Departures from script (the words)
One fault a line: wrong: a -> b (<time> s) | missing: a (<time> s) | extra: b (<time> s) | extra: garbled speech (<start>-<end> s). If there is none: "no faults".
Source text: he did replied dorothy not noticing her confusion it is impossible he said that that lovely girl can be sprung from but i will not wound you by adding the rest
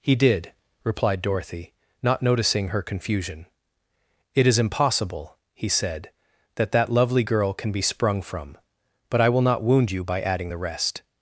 no faults